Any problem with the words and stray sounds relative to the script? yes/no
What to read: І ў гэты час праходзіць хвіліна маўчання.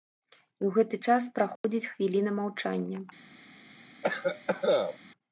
yes